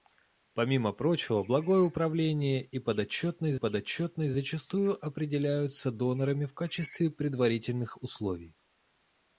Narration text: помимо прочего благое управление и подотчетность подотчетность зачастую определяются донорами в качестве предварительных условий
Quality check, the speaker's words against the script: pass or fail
pass